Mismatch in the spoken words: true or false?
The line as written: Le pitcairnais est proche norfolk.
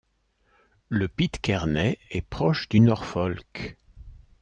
true